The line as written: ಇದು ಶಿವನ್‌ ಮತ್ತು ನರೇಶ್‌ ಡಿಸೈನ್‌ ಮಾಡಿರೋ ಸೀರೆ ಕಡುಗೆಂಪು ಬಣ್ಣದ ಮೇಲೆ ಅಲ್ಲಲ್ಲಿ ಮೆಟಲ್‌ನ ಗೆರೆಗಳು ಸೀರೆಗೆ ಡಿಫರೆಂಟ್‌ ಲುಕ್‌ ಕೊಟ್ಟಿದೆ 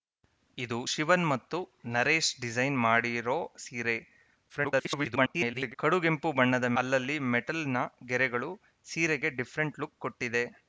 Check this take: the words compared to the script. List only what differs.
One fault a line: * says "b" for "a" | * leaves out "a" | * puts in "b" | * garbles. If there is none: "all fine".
* garbles
* leaves out "ಮೇಲೆ"